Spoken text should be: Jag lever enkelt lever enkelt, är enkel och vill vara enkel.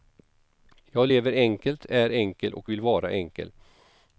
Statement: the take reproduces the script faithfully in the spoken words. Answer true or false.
false